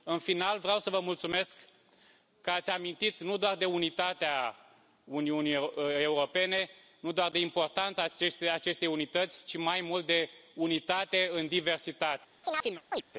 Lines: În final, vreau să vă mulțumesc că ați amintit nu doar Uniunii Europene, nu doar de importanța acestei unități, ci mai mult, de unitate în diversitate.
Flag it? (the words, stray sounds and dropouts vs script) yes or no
yes